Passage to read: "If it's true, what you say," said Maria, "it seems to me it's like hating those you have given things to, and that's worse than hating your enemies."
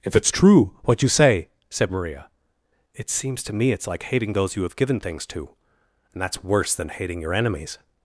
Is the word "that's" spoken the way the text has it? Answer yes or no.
yes